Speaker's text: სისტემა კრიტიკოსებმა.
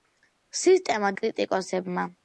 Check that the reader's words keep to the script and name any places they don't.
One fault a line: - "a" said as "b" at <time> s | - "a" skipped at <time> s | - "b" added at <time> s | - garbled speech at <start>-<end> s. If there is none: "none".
none